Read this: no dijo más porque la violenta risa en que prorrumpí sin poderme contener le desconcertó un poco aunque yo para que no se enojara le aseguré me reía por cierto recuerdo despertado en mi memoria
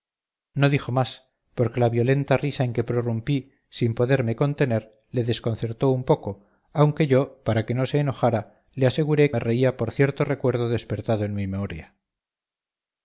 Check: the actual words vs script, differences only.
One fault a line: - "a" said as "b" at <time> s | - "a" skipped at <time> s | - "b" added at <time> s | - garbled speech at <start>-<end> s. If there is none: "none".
none